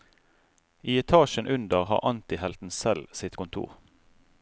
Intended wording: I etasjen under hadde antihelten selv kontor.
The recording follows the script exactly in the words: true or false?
false